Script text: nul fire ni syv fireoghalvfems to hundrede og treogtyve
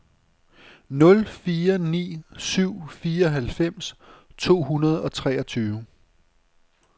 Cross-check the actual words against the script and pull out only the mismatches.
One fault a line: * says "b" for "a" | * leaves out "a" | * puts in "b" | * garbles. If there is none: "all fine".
all fine